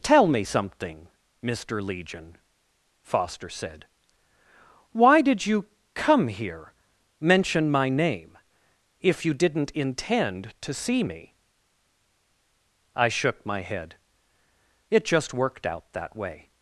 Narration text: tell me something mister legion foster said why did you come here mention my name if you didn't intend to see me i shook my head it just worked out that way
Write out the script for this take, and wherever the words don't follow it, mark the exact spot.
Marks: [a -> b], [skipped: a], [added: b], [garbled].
tell me something mister legion foster said why did you come here mention my name if you didn't intend to see me i shook my head it just worked out that way